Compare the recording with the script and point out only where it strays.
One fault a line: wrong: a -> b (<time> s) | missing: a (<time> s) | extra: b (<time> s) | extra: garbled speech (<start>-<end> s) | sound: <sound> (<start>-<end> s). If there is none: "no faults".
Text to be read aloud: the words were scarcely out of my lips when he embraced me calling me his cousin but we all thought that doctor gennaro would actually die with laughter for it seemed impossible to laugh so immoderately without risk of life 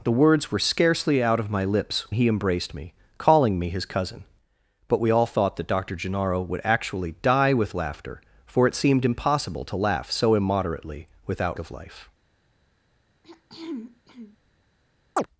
missing: when (2.1 s)
missing: risk (11.6 s)
sound: throat clearing (13.2-14.4 s)
sound: chirp (15.2-15.3 s)